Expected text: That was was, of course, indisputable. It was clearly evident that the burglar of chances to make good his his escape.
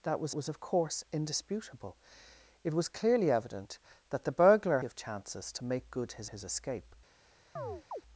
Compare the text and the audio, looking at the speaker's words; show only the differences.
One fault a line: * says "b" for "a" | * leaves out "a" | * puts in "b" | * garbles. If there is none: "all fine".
all fine